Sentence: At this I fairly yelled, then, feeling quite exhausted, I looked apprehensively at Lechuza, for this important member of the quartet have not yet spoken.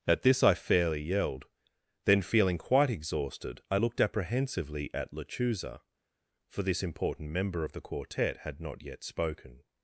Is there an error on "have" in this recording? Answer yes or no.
yes